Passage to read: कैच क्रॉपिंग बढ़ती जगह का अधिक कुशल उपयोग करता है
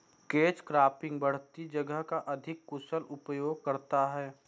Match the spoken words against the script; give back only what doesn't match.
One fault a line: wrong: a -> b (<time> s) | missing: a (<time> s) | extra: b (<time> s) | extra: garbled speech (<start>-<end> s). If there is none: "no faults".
no faults